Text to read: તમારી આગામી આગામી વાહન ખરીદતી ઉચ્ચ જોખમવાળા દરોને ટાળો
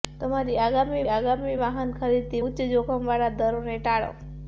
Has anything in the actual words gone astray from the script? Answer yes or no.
no